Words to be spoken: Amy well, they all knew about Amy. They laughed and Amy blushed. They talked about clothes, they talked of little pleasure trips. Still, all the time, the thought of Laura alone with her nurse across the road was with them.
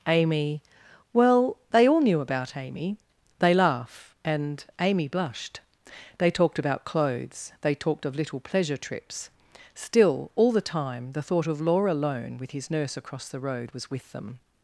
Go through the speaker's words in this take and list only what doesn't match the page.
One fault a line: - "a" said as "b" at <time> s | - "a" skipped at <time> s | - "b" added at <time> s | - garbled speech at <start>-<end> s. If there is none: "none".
- "laughed" said as "laugh" at 3.5 s
- "her" said as "his" at 12.5 s